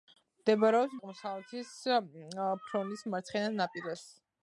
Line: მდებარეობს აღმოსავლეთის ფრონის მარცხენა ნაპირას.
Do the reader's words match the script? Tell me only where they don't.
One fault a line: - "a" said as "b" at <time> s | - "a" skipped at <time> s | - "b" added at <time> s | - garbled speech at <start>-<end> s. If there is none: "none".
none